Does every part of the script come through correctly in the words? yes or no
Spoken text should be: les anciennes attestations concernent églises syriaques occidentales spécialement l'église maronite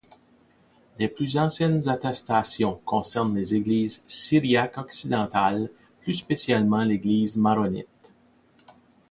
no